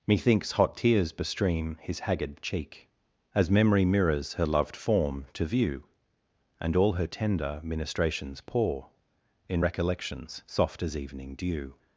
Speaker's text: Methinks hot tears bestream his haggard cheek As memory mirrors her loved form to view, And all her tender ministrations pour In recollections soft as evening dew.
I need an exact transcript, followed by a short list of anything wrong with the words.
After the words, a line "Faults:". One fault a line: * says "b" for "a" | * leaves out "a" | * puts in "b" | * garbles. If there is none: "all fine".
Methinks hot tears bestream his haggard cheek As memory mirrors her loved form to view, And all her tender ministrations pour In recollections soft as evening dew.
Faults:
all fine